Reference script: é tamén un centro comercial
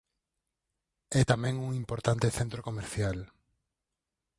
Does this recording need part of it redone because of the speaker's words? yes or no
yes